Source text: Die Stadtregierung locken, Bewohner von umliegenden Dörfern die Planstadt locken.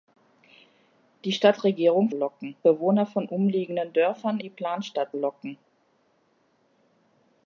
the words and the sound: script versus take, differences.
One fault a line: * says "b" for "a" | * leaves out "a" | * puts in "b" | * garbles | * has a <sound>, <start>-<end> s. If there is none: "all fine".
all fine